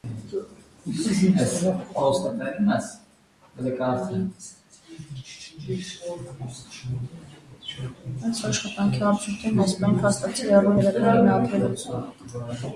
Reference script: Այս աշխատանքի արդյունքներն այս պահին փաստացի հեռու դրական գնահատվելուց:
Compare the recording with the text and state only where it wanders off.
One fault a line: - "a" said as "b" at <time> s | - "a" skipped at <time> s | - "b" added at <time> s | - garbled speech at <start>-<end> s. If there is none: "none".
none